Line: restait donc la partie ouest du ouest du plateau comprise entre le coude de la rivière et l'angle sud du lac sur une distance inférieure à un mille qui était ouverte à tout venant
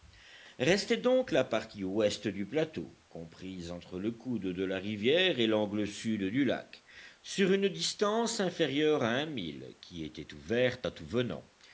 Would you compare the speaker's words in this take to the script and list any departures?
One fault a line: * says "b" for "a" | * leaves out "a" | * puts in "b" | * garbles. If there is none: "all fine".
* leaves out "ouest du"